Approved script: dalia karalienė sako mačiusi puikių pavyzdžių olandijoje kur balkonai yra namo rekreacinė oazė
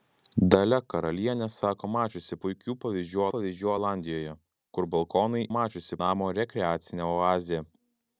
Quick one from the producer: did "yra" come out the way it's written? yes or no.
no